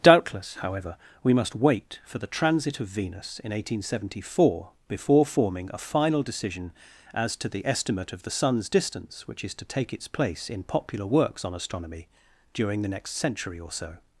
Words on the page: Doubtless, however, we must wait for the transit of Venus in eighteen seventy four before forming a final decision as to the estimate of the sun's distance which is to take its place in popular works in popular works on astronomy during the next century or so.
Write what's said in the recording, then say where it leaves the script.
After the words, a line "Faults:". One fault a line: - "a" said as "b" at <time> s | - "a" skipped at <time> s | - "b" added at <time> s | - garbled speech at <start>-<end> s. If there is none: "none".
Doubtless, however, we must wait for the transit of Venus in eighteen seventy four before forming a final decision as to the estimate of the sun's distance which is to take its place in popular works on astronomy during the next century or so.
Faults:
- "in popular works" skipped at 11.4 s